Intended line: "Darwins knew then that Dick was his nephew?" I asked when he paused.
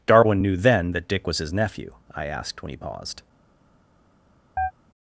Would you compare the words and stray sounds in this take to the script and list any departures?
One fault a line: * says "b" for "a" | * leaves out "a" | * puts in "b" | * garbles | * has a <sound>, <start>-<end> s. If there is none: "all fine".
* says "Darwin" for "Darwins"
* has a chirp, 4.6-4.7 s